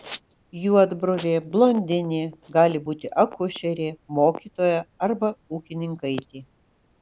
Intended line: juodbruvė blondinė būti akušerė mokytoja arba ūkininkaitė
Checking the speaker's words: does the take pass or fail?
fail